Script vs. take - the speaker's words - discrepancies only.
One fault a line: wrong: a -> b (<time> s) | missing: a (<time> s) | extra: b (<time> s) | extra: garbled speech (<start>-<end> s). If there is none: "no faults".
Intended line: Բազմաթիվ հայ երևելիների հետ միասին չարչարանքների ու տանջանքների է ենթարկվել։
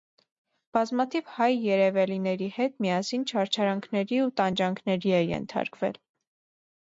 no faults